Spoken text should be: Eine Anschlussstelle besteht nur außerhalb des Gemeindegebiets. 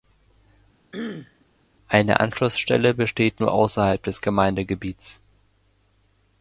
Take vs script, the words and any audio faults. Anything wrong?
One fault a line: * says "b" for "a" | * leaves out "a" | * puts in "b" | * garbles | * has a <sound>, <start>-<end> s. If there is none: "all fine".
* has a throat clearing, 0.9-1.5 s